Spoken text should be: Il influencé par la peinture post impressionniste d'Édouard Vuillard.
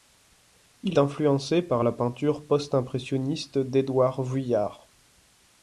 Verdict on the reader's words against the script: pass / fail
pass